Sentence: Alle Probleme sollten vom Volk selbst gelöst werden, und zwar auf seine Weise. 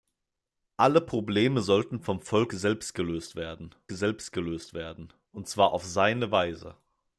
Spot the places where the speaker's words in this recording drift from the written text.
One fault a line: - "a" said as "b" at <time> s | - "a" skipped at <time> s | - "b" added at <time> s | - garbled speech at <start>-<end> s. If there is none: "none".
- "selbst gelöst werden" added at 3.9 s